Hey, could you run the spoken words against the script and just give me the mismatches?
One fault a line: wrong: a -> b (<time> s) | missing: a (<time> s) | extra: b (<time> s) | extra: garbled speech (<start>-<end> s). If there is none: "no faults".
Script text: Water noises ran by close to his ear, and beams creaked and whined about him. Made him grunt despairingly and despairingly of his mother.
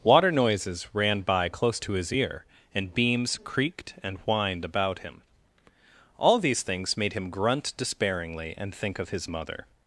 extra: All these things (6.2 s)
wrong: despairingly -> think (8.8 s)